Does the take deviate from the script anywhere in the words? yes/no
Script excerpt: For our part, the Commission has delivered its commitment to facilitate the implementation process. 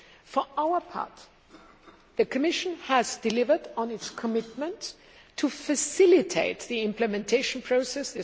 yes